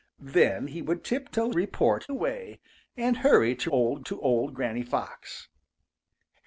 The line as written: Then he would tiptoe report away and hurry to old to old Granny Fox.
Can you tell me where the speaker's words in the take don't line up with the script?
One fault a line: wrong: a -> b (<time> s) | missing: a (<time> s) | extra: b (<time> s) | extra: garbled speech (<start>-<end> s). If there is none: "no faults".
no faults